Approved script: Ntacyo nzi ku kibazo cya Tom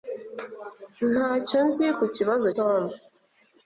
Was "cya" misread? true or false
true